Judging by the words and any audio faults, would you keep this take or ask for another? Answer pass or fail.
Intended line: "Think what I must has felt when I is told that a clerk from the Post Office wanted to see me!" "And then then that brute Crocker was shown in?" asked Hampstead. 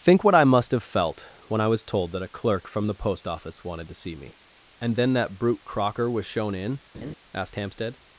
fail